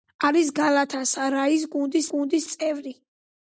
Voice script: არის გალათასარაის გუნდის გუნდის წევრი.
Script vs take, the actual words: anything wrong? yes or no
no